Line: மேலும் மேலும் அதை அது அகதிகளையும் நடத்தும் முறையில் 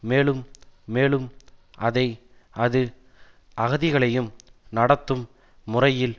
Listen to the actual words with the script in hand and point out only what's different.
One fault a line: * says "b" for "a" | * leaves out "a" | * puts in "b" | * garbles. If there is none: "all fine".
all fine